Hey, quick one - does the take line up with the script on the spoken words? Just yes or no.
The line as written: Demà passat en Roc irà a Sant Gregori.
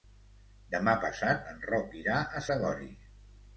no